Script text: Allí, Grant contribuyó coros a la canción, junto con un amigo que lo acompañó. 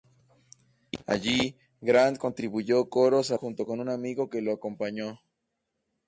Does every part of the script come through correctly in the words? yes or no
no